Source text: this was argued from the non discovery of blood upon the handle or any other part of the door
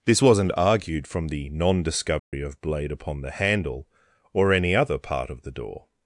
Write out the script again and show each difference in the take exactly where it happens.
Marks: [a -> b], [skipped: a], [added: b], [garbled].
this [was -> wasn't] argued from the non discovery of [blood -> blade] upon the handle or any other part of the door